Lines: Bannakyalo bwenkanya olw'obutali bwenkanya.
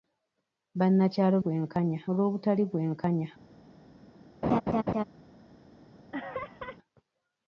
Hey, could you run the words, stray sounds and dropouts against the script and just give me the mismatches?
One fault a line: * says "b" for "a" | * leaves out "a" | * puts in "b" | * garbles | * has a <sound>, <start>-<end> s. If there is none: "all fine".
* has a laugh, 4.4-5.0 s
* has a laugh, 6.1-6.8 s